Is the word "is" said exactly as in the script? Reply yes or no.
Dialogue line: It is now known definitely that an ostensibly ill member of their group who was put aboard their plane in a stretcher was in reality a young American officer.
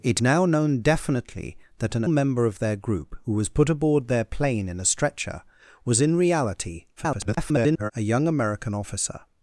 no